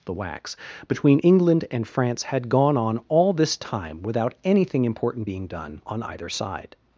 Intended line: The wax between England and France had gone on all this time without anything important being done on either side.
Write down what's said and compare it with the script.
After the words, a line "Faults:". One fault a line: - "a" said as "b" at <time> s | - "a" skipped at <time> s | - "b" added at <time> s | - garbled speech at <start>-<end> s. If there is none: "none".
The wax between England and France had gone on all this time without anything important being done on either side.
Faults:
none